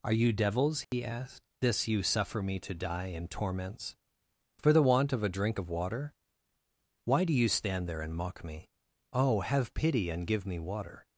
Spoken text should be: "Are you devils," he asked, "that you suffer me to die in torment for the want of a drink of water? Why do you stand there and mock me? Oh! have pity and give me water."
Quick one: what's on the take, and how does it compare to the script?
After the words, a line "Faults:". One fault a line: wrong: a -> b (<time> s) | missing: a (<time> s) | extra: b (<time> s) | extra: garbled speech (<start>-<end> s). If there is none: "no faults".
"Are you devils," he asked, "this you suffer me to die in torments for the want of a drink of water? Why do you stand there and mock me? Oh! have pity and give me water."
Faults:
wrong: that -> this (1.6 s)
wrong: torment -> torments (3.3 s)